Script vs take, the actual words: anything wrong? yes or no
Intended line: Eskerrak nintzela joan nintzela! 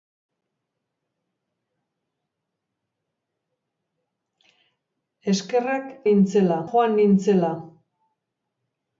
no